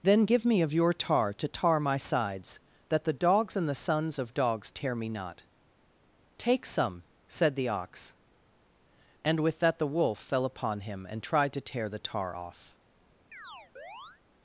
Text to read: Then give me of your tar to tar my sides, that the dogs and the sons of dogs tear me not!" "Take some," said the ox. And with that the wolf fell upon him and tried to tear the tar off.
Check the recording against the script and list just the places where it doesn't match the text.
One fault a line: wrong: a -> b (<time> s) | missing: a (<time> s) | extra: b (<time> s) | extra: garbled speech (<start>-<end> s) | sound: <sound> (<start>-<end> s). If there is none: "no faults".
sound: chirp (13.3-14.2 s)